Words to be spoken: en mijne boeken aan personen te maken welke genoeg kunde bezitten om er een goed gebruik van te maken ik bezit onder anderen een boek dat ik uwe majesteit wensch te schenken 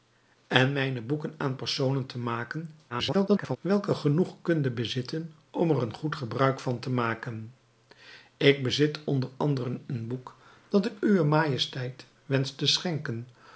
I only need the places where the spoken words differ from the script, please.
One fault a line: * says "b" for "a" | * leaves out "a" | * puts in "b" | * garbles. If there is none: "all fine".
* garbles